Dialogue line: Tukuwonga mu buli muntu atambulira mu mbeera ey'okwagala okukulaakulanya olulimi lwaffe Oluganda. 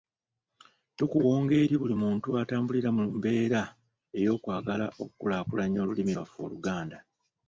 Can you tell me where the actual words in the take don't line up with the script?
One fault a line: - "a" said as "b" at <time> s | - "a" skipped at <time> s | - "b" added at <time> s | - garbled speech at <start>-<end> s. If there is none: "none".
- "mu" said as "eri" at 1.6 s